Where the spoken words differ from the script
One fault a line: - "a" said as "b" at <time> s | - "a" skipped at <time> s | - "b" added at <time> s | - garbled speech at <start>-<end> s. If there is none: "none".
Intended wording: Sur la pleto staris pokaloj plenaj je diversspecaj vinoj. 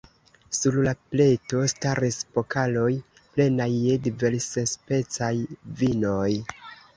none